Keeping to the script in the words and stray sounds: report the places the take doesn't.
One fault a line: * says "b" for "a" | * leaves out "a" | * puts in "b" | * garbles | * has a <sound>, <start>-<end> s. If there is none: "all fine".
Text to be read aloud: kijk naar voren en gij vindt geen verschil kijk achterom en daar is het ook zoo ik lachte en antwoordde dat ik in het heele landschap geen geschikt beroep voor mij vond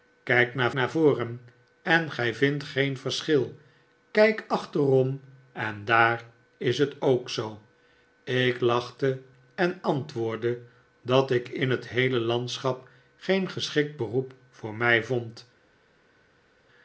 * puts in "naar"